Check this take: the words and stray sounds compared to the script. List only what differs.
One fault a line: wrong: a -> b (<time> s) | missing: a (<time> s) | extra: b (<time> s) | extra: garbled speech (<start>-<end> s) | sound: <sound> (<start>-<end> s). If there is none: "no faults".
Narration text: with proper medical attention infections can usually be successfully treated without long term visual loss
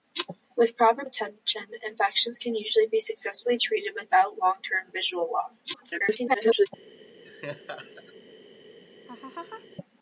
missing: medical (1.1 s)
extra: garbled speech (5.7-6.7 s)
sound: laugh (7.2-8.1 s)
sound: laugh (9.1-9.7 s)